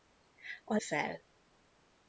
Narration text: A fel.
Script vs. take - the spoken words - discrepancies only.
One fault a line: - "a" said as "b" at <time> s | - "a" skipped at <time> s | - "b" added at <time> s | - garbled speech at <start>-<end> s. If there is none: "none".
none